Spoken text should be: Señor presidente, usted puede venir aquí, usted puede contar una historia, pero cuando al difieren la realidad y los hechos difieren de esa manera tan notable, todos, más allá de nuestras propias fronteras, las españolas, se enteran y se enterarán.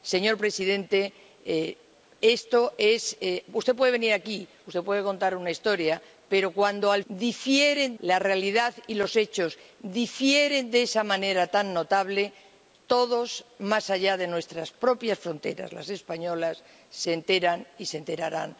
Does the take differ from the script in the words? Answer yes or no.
no